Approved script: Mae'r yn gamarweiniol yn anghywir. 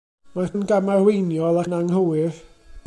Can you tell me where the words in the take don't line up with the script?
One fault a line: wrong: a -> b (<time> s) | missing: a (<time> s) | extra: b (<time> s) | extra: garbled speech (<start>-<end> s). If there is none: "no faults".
no faults